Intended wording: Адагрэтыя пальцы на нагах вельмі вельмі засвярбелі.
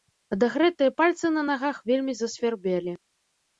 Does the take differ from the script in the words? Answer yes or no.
yes